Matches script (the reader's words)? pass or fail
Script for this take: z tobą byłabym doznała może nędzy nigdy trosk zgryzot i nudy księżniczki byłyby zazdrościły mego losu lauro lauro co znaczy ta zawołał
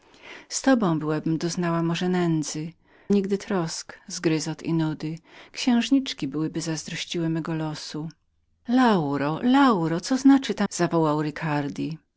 pass